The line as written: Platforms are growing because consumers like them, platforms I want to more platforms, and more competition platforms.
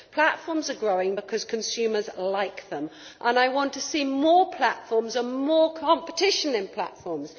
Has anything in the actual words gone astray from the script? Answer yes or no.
yes